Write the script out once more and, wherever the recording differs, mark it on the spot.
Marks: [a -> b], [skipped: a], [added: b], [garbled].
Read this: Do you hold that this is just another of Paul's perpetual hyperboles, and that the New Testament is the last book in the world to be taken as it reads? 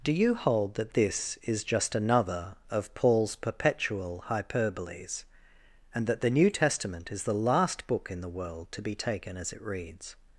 Do you hold that this is just another of Paul's perpetual hyperboles, and that the New Testament is the last book in the world to be taken as it reads?